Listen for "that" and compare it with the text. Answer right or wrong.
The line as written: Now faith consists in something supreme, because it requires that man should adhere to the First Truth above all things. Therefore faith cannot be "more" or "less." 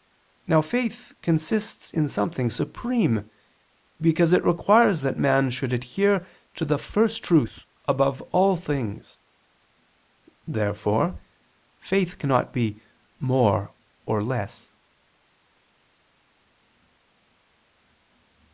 right